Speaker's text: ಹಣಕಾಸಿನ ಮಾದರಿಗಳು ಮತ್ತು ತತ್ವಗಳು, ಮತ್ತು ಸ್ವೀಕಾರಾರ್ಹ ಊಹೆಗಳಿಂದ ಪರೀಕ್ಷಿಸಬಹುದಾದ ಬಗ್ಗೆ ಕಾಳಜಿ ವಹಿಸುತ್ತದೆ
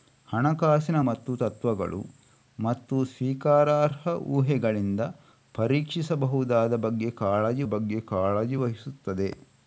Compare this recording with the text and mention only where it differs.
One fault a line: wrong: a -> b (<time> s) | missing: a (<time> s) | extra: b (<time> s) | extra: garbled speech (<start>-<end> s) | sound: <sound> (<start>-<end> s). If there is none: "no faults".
missing: ಮಾದರಿಗಳು (1.0 s)
extra: ಬಗ್ಗೆ ಕಾಳಜಿ (7.7 s)